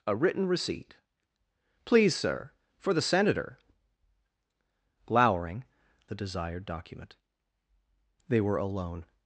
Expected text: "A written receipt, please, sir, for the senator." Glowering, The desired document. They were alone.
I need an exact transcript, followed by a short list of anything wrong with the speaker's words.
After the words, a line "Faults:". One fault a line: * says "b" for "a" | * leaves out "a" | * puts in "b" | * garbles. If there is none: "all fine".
"A written receipt, please, sir, for the senator." Glowering, The desired document. They were alone.
Faults:
all fine